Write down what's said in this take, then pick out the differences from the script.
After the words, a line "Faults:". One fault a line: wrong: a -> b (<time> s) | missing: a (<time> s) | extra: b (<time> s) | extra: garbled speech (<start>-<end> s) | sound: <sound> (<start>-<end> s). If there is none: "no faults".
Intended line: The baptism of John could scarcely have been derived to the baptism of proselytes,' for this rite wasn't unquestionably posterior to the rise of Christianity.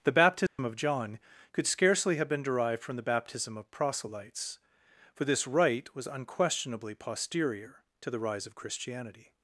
The baptism of John could scarcely have been derived from the baptism of proselytes,' for this rite was unquestionably posterior to the rise of Christianity.
Faults:
sound: dropout (0.5-0.6 s)
wrong: to -> from (2.8 s)
wrong: wasn't -> was (5.9 s)